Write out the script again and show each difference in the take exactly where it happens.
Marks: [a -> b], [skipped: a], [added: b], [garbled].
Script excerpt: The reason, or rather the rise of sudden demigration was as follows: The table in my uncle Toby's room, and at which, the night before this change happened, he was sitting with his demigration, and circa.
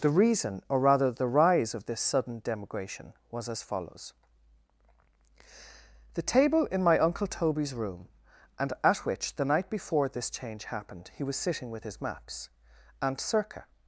The reason, or rather the rise of [added: this] sudden demigration was as follows: The table in my uncle Toby's room, and at which, the night before this change happened, he was sitting with his [demigration, -> maps] and circa.